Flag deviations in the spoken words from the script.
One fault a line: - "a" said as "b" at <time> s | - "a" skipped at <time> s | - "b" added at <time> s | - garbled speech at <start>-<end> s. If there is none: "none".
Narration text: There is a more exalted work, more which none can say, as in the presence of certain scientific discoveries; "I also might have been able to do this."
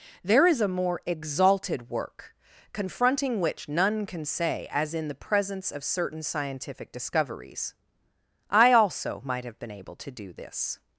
- "more" said as "confronting" at 2.7 s